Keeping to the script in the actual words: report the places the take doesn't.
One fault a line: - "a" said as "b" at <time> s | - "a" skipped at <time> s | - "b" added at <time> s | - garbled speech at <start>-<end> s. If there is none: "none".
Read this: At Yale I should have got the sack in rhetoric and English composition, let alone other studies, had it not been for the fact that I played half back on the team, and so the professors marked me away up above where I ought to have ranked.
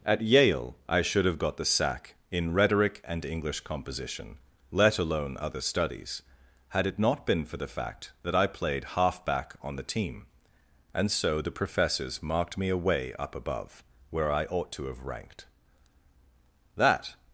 - "That" added at 16.8 s